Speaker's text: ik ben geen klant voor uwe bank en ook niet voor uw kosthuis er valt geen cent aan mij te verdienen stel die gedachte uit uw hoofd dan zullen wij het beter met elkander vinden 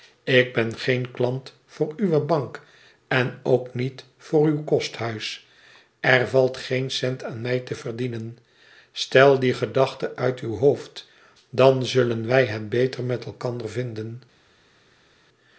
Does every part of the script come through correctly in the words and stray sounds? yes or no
yes